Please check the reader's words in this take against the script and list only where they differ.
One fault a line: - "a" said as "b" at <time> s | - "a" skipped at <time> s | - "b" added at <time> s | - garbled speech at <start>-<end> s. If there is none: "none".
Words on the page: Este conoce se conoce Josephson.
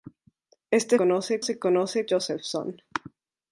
none